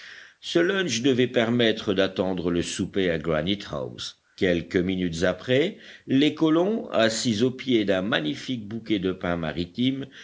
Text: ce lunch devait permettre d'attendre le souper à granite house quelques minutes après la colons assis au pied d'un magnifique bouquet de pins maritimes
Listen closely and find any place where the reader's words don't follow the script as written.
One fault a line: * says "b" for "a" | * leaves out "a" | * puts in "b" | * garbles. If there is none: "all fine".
* says "les" for "la"